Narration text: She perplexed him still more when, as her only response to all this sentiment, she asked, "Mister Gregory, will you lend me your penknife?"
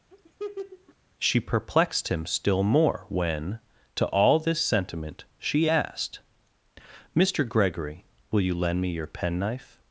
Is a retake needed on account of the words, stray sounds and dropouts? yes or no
yes